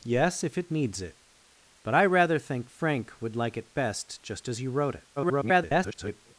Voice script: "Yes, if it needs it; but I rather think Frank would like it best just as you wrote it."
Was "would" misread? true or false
false